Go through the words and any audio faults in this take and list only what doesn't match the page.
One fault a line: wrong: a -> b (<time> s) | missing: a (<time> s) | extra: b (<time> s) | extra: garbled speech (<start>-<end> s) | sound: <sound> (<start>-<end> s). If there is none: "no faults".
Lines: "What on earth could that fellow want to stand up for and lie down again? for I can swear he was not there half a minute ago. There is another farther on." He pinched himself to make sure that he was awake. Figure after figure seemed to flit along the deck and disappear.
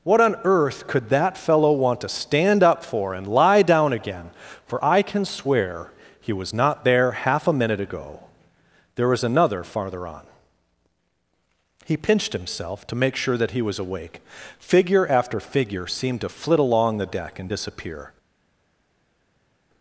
wrong: is -> was (9.1 s)